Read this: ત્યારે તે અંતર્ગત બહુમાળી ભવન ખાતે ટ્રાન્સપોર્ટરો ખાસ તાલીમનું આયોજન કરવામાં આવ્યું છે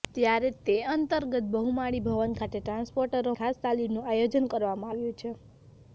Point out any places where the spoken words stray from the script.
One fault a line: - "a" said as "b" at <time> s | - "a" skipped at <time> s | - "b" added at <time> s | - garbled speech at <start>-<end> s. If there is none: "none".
none